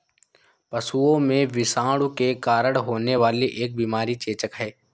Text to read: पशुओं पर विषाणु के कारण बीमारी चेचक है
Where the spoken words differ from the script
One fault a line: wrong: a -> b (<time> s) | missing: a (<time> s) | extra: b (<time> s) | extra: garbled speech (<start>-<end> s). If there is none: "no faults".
wrong: पर -> में (1.2 s)
extra: होने वाली एक (2.8 s)